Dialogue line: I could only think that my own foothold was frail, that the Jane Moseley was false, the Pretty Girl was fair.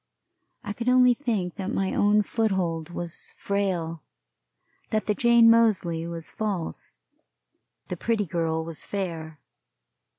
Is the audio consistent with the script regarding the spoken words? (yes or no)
yes